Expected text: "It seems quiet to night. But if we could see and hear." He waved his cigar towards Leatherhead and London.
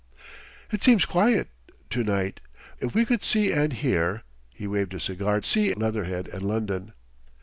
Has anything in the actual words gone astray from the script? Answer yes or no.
yes